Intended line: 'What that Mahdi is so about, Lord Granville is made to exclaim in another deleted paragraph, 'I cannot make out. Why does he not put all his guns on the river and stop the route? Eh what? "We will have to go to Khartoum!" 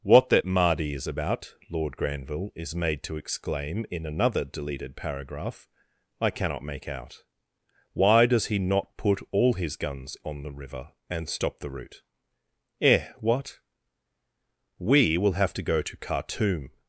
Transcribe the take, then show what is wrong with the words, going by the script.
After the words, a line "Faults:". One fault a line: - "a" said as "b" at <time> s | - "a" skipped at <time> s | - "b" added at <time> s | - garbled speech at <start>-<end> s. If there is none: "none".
'What that Mahdi is about, Lord Granville is made to exclaim in another deleted paragraph, 'I cannot make out. Why does he not put all his guns on the river and stop the route? Eh what? "We will have to go to Khartoum!"
Faults:
- "so" skipped at 1.1 s